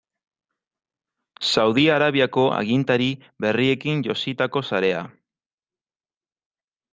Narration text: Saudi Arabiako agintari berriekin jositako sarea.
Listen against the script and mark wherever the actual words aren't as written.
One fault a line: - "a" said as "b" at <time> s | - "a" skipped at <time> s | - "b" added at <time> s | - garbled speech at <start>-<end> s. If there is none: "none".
none